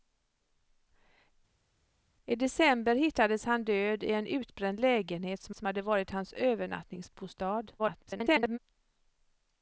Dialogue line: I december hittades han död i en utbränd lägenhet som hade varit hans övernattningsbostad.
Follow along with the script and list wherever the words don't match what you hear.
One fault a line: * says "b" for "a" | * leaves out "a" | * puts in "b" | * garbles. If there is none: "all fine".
* puts in "som"
* garbles